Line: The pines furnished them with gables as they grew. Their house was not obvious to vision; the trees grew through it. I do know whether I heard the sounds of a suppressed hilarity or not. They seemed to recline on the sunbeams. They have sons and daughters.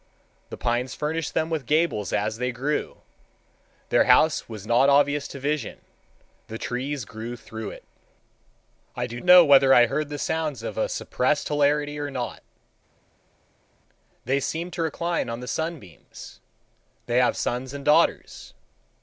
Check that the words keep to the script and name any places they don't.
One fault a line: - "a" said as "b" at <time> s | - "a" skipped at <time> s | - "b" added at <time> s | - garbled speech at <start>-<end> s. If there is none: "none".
none